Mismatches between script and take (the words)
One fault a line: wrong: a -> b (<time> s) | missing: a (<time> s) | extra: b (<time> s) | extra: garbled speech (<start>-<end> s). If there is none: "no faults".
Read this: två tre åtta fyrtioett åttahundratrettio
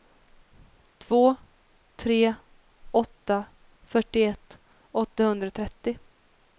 no faults